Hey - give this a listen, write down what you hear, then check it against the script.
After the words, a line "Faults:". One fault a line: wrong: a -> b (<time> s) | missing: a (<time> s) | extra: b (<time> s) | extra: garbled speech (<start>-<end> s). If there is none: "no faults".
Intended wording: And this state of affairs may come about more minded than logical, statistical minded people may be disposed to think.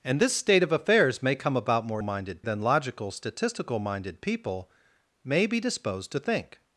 And this state of affairs may come about more minded than logical, statistical minded people may be disposed to think.
Faults:
no faults